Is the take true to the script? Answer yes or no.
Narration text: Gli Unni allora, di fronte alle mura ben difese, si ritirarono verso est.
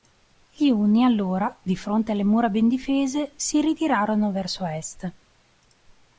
yes